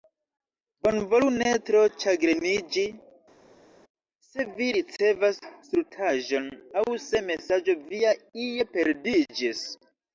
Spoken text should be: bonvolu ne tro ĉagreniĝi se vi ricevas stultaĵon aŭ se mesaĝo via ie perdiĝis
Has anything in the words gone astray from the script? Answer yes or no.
no